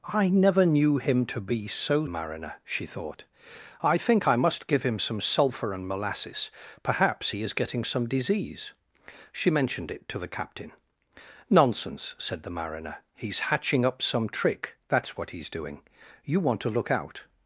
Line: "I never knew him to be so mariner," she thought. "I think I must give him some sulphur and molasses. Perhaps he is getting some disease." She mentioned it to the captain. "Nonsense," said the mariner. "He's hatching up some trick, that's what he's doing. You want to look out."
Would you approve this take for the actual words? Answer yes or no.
yes